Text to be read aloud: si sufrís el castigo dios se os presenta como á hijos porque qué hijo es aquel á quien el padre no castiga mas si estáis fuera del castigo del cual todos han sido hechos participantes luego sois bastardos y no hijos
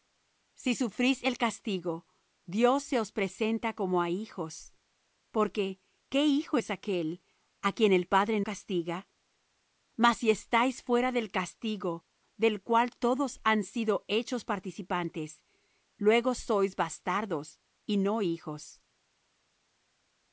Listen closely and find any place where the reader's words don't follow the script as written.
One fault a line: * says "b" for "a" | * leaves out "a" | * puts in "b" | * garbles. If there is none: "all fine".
* leaves out "no"